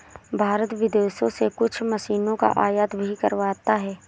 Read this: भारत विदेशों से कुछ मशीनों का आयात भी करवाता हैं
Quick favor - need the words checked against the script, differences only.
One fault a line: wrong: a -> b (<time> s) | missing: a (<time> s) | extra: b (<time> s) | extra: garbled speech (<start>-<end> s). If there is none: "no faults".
no faults